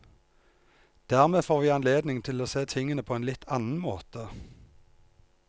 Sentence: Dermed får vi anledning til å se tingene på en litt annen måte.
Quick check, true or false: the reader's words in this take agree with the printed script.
true